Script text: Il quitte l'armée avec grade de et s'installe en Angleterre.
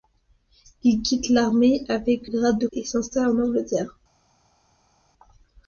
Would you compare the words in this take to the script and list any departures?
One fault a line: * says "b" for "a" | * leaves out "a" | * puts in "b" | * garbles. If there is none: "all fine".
all fine